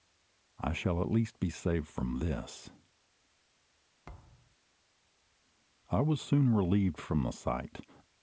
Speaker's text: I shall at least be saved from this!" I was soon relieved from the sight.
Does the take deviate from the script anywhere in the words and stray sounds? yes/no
yes